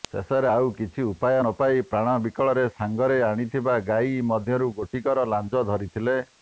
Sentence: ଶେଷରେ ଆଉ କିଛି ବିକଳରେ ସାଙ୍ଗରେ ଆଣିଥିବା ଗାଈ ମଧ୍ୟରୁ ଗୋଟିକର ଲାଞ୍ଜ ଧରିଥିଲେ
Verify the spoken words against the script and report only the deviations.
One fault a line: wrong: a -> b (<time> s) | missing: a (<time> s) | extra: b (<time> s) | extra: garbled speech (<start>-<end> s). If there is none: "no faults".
extra: ଉପାୟ ନପାଇ ପ୍ରାଣ (1.0 s)